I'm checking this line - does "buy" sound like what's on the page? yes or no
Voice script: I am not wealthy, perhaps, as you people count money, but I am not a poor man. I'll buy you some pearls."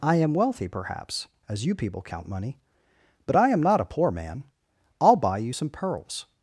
yes